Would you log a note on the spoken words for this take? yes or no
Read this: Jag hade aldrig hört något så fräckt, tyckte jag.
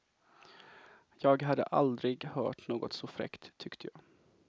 no